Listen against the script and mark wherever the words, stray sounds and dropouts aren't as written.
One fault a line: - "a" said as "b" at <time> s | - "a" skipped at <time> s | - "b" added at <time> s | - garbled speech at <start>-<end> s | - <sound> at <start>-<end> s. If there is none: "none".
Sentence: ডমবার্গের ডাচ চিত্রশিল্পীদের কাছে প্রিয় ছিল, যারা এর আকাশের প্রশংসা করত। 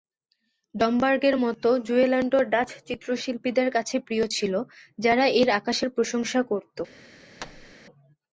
- "মতো জুয়েল্যান্ডও" added at 1.4 s
- thud at 7.4-7.8 s